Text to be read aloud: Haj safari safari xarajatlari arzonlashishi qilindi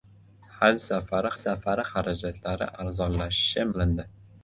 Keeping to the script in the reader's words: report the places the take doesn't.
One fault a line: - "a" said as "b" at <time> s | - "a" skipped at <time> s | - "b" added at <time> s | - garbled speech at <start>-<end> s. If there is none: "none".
none